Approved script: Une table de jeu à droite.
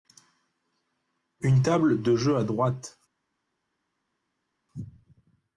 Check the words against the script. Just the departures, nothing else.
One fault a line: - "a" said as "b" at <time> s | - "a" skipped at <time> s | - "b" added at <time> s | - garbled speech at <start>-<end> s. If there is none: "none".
none